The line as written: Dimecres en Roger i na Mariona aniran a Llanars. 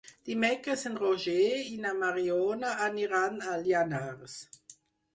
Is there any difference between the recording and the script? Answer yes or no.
no